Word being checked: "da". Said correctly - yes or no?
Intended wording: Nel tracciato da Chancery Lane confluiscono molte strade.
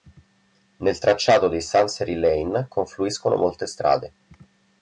no